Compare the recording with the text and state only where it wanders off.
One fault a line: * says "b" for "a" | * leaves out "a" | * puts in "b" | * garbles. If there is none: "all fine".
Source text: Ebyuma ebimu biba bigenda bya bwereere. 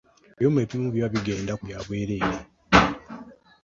all fine